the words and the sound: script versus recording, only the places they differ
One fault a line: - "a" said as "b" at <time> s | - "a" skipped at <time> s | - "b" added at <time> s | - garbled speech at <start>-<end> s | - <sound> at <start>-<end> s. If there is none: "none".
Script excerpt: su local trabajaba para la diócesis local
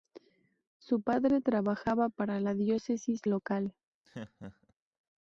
- "local" said as "padre" at 1.0 s
- laugh at 4.0-4.7 s